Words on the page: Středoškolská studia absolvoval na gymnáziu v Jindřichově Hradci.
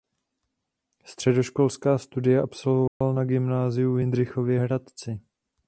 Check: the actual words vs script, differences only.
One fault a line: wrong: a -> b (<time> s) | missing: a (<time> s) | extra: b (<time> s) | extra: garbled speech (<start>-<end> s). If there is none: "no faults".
no faults